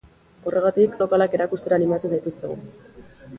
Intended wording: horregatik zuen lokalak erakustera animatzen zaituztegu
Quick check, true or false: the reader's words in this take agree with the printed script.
false